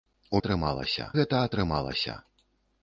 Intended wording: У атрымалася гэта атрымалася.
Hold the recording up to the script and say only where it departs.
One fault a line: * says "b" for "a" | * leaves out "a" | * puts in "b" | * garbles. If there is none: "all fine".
all fine